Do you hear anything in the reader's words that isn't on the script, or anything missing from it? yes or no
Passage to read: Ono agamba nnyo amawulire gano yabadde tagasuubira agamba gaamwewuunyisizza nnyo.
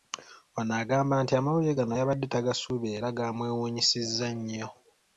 yes